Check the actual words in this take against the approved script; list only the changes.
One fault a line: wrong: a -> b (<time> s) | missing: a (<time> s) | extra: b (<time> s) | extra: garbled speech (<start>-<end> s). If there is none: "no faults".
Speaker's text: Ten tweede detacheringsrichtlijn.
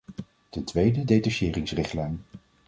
no faults